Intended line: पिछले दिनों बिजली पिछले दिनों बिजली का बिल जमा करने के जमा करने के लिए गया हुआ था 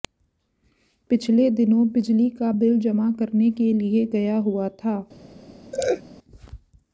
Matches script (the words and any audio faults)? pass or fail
fail